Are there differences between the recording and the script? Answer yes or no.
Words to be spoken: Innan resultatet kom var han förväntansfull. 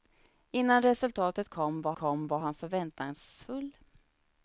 yes